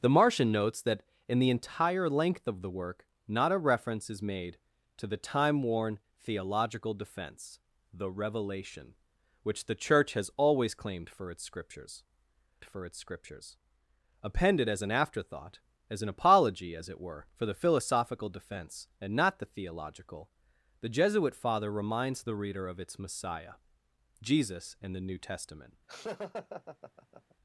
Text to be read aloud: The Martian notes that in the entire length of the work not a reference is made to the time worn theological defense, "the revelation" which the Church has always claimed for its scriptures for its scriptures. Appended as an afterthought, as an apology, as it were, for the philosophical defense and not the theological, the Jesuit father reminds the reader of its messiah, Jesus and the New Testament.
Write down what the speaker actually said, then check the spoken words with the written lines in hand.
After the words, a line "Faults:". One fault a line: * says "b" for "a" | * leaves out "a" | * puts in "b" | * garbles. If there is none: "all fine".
The Martian notes that in the entire length of the work not a reference is made to the time worn theological defense, "the revelation" which the Church has always claimed for its scriptures for its scriptures. Appended as an afterthought, as an apology, as it were, for the philosophical defense and not the theological, the Jesuit father reminds the reader of its messiah, Jesus and the New Testament.
Faults:
all fine